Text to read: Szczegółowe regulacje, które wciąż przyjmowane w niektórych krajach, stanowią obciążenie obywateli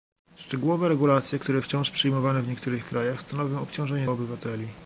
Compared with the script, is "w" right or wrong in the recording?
right